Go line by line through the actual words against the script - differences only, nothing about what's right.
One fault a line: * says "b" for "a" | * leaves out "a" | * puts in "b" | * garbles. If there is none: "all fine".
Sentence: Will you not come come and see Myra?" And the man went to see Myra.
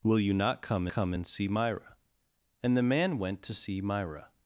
all fine